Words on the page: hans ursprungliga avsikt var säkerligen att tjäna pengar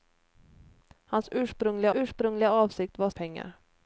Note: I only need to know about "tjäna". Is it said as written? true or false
false